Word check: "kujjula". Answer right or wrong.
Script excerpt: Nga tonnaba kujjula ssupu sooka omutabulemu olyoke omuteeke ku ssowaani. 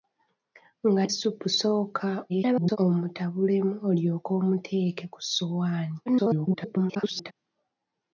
wrong